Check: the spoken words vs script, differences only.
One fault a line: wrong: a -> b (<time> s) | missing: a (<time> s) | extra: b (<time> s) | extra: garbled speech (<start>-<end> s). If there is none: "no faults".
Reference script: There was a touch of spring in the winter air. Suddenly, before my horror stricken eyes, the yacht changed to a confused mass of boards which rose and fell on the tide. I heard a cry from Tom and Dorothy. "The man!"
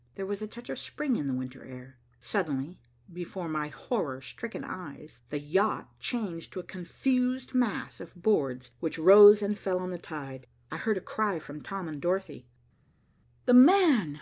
no faults